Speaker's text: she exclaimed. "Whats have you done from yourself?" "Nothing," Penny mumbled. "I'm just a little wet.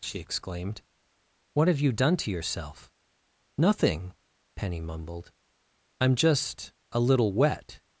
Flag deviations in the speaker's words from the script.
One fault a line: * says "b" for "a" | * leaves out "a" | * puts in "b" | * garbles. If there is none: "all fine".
* says "What" for "Whats"
* says "to" for "from"